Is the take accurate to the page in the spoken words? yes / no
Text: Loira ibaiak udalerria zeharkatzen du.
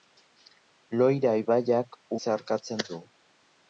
no